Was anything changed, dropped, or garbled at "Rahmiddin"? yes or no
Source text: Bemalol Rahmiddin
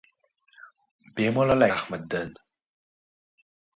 no